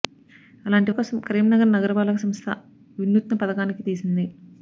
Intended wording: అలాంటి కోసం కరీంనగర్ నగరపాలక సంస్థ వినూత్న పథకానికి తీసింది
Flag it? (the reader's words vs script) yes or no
no